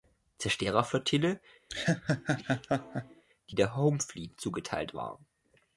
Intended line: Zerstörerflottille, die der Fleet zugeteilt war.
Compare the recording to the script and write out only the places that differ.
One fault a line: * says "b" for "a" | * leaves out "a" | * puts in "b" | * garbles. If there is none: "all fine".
* puts in "Home"